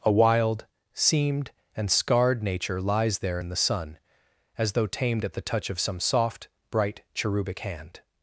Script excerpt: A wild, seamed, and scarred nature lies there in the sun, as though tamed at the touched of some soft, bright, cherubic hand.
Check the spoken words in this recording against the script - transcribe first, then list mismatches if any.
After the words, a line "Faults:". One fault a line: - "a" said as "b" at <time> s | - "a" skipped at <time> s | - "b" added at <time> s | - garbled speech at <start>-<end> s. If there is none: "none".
A wild, seamed, and scarred nature lies there in the sun, as though tamed at the touch of some soft, bright, cherubic hand.
Faults:
- "touched" said as "touch" at 5.4 s